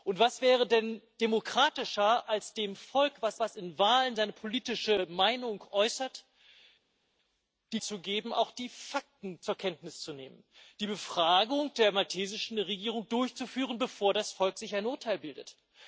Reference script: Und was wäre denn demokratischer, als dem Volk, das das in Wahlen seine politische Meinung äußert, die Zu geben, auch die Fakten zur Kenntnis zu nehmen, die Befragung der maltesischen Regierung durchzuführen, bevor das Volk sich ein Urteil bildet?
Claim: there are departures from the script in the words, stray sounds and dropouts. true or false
false